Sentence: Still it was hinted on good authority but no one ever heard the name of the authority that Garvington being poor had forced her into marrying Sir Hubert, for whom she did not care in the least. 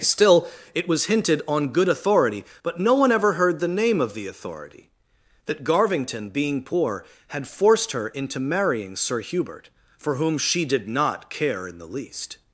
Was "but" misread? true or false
false